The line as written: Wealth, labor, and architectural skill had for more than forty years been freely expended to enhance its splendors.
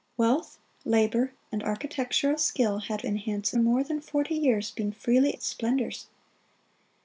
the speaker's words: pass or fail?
fail